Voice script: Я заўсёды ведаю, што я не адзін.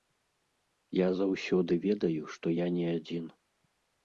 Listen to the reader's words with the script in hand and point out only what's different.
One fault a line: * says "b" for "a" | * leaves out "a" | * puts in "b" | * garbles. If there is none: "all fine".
all fine